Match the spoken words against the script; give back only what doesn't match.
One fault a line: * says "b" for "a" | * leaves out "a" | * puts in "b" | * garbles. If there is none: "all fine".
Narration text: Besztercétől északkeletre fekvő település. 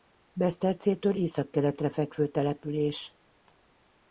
all fine